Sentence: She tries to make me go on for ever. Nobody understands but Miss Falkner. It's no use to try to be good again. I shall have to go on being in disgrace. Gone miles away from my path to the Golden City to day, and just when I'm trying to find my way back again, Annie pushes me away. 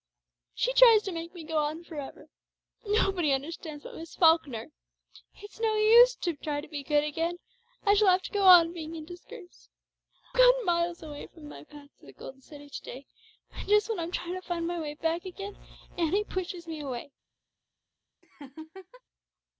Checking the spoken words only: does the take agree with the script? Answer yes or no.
yes